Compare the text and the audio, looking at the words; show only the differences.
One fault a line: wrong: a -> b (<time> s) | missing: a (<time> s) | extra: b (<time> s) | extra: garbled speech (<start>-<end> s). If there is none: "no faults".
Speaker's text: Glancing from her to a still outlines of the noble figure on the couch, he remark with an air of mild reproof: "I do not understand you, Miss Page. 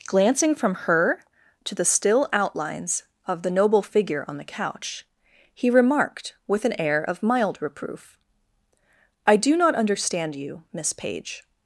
wrong: a -> the (1.8 s)
wrong: remark -> remarked (5.7 s)